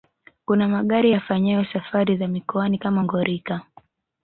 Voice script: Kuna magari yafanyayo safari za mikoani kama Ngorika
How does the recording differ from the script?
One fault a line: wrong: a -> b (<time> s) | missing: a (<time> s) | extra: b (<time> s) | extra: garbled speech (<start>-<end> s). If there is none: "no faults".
no faults